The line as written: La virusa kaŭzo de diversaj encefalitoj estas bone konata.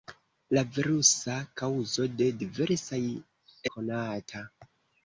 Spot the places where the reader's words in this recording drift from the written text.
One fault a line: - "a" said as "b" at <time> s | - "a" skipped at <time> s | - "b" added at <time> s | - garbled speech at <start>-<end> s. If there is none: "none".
- "encefalitoj estas bone" skipped at 3.0 s